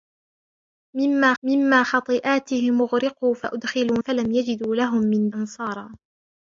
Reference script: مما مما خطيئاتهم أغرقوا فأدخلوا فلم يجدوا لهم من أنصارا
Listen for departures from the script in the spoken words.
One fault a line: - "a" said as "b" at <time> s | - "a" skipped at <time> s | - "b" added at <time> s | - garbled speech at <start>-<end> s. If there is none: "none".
none